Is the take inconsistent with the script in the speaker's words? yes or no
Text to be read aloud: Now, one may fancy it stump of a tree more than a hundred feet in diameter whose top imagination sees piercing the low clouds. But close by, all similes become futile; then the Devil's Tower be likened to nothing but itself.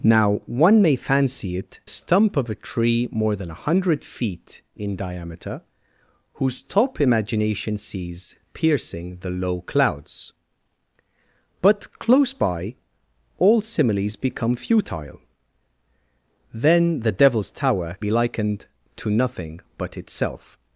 no